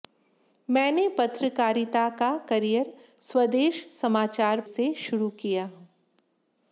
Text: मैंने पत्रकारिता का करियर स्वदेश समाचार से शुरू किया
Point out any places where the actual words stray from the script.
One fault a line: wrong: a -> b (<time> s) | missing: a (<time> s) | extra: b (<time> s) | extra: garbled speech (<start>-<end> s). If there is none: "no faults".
no faults